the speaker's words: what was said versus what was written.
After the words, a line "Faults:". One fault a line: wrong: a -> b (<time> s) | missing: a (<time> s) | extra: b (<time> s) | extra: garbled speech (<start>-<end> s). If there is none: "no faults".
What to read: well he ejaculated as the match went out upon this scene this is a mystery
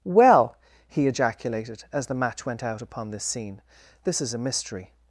well he ejaculated as the match went out upon this scene this is a mystery
Faults:
no faults